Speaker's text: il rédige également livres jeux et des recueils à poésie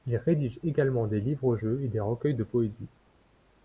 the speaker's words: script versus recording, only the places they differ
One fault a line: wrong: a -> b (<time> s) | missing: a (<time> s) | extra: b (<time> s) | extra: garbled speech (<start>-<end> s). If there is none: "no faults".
extra: des (1.1 s)
wrong: à -> de (2.3 s)